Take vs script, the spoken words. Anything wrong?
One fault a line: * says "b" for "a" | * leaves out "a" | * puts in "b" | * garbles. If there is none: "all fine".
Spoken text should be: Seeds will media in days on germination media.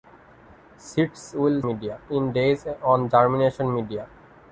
all fine